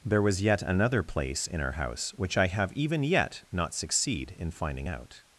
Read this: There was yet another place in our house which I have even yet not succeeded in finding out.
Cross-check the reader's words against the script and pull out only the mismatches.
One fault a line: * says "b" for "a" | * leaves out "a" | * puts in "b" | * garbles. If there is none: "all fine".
* says "succeed" for "succeeded"